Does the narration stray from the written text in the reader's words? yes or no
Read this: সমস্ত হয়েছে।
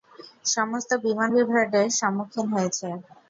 yes